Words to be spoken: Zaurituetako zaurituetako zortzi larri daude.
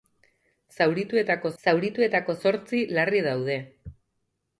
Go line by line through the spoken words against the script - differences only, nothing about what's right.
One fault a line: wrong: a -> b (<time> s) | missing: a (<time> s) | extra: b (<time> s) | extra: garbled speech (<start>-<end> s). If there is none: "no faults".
no faults